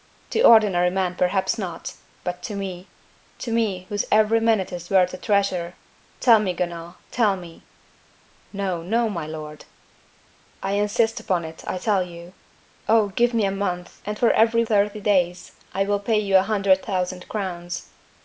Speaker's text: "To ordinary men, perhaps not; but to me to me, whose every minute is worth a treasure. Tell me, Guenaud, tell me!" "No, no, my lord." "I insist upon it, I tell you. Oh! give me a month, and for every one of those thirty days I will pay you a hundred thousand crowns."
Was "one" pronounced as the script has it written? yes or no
no